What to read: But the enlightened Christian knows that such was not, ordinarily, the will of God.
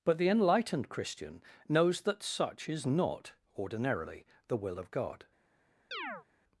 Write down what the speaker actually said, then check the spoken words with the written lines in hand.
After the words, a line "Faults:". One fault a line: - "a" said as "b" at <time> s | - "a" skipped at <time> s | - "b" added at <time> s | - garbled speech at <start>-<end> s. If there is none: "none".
But the enlightened Christian knows that such is not, ordinarily, the will of God.
Faults:
- "was" said as "is" at 2.7 s